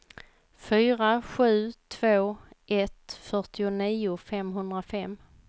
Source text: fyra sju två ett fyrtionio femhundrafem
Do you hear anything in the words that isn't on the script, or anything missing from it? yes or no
no